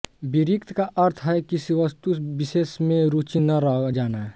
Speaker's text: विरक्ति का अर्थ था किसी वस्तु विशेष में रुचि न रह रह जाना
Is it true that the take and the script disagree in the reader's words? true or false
true